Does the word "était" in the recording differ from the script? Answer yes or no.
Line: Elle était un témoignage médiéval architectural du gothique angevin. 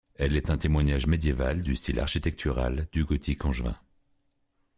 yes